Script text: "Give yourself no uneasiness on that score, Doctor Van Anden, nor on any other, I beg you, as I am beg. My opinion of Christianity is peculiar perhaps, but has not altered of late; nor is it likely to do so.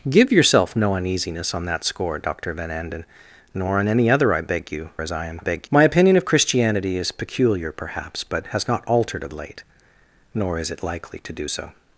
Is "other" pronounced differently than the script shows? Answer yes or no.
no